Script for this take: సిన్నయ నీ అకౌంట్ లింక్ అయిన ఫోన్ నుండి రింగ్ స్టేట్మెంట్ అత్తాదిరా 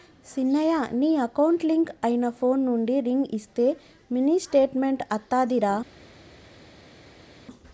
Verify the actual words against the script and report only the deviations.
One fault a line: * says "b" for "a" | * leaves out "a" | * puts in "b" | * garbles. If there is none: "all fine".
* puts in "ఇస్తే మినీ"